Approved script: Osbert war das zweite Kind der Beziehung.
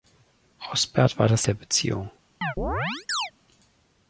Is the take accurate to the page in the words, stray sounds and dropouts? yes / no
no